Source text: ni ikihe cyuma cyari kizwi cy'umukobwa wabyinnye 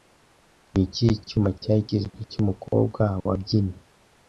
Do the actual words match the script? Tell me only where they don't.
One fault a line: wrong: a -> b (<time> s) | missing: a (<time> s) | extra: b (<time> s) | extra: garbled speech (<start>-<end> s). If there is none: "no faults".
no faults